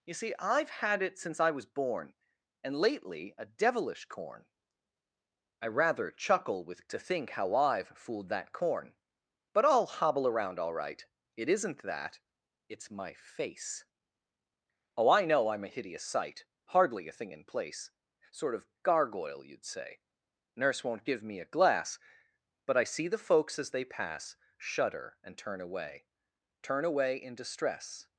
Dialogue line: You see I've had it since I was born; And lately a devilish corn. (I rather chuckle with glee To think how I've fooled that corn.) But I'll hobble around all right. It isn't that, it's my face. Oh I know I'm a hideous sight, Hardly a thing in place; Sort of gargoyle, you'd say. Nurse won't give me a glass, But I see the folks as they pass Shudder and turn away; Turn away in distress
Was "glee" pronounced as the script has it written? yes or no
no